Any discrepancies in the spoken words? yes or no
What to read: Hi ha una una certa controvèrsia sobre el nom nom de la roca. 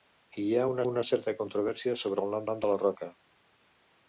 no